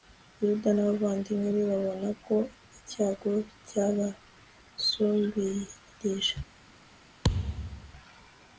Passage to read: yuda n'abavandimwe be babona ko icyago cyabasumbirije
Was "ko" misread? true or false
false